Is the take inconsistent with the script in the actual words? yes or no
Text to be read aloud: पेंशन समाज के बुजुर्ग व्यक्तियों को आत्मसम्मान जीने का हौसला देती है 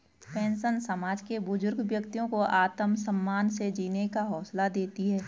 yes